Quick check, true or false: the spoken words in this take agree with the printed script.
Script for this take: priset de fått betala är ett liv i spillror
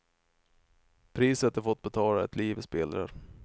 true